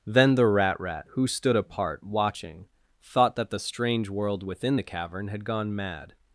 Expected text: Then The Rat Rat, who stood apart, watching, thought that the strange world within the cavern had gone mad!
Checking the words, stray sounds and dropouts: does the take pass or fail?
pass